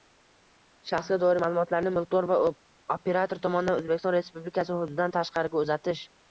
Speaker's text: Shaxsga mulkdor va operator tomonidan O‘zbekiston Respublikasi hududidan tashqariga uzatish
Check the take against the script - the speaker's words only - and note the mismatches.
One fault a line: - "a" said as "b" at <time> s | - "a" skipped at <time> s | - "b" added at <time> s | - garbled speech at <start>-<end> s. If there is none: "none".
- "doir ma'lumotlarni" added at 1.2 s